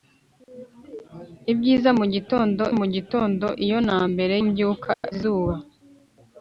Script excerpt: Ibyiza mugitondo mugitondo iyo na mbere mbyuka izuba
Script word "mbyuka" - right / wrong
right